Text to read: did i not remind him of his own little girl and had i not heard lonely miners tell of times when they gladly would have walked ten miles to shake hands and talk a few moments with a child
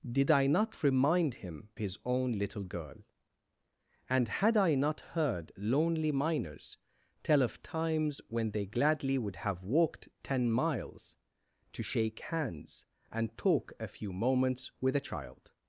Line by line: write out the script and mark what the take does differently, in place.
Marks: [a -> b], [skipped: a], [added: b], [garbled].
did i not remind him [skipped: of] his own little girl and had i not heard lonely miners tell of times when they gladly would have walked ten miles to shake hands and talk a few moments with a child